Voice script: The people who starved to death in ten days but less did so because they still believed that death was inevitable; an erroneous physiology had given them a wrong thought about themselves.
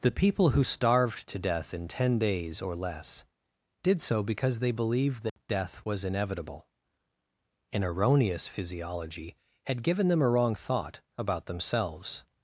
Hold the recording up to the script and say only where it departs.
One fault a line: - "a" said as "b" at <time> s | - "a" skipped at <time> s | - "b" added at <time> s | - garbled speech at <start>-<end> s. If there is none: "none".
- "but" said as "or" at 2.6 s
- "still" skipped at 4.7 s